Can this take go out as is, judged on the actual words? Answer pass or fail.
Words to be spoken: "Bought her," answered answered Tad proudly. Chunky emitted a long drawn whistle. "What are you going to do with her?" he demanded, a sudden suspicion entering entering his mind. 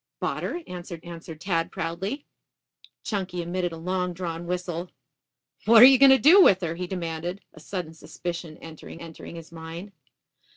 pass